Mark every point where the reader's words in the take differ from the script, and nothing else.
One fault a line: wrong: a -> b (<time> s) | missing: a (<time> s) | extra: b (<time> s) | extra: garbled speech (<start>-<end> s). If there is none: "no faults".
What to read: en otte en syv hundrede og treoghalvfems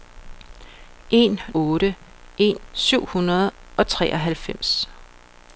no faults